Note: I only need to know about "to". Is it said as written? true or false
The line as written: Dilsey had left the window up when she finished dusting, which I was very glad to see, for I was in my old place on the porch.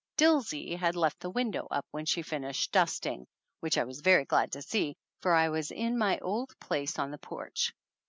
true